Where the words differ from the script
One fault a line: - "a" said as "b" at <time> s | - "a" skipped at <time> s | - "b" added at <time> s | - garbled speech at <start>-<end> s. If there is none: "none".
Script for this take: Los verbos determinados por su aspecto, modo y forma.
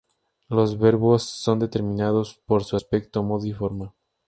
- "son" added at 1.2 s